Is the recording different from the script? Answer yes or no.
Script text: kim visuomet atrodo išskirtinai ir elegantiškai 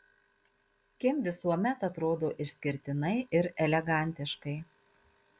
no